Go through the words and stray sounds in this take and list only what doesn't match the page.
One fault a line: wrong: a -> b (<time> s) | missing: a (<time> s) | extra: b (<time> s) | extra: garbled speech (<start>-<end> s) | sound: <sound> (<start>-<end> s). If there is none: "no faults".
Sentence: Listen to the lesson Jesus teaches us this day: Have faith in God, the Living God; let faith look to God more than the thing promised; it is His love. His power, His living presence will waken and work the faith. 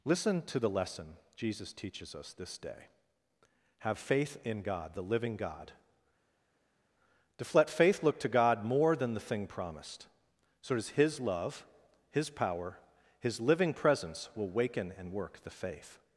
extra: to (7.4 s)
wrong: it is -> so does (10.6 s)